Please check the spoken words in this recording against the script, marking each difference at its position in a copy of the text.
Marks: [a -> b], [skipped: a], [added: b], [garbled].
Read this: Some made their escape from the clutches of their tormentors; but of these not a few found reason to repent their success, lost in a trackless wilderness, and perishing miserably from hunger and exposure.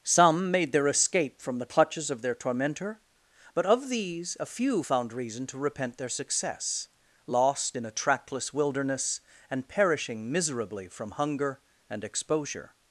Some made their escape from the clutches of their [tormentors; -> tormentor] but of these [skipped: not] a few found reason to repent their success, lost in a trackless wilderness, and perishing miserably from hunger and exposure.